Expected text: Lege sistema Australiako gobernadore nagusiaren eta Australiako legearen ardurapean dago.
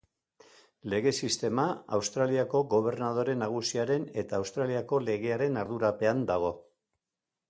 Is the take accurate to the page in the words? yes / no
yes